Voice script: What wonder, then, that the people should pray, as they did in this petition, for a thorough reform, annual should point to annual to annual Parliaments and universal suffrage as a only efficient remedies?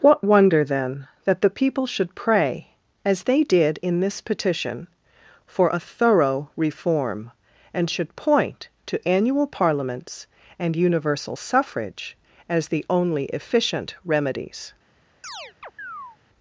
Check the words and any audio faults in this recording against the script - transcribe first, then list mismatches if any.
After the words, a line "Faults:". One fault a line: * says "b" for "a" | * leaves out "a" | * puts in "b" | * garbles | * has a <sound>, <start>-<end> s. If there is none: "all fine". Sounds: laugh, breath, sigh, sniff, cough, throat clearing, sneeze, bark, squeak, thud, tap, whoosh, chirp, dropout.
What wonder, then, that the people should pray, as they did in this petition, for a thorough reform, and should point to annual Parliaments and universal suffrage as the only efficient remedies?
Faults:
* says "and" for "annual"
* leaves out "to annual"
* says "the" for "a"
* has a chirp, 15.2-16.2 s